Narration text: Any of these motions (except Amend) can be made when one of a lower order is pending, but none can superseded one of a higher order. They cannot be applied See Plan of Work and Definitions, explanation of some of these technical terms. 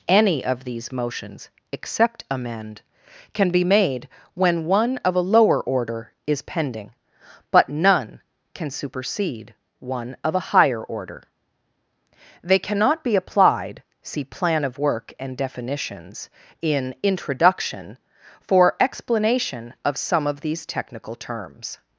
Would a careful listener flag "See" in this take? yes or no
no